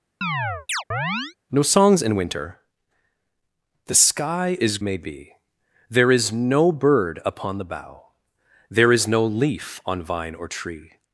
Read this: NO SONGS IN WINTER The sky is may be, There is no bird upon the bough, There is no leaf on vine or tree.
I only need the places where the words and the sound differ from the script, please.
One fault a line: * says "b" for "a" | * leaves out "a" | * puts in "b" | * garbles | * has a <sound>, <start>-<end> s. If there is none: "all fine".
* has a chirp, 0.2-1.4 s